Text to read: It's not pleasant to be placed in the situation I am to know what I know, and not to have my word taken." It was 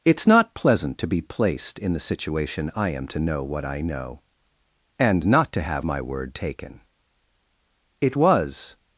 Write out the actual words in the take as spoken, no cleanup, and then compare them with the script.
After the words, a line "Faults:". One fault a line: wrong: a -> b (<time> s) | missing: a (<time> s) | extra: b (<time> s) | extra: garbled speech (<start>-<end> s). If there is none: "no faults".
It's not pleasant to be placed in the situation I am to know what I know, and not to have my word taken." It was
Faults:
no faults